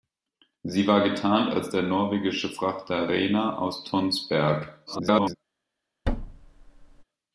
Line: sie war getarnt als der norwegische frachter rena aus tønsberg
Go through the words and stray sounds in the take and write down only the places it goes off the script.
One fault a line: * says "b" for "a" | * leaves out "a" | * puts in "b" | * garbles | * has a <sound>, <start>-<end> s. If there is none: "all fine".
* garbles
* has a thud, 6.1-7.0 s